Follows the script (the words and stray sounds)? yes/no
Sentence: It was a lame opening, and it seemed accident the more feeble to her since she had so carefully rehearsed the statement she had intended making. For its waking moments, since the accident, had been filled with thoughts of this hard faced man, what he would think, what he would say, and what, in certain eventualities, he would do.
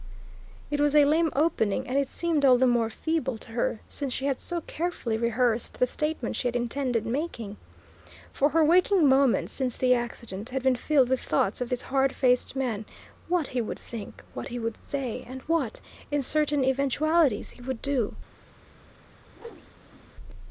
no